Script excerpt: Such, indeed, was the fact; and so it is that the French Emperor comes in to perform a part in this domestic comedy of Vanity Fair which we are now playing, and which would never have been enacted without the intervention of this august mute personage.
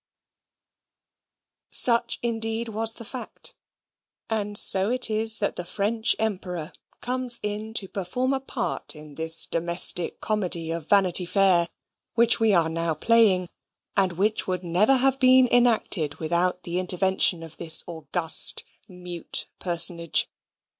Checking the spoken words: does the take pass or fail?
pass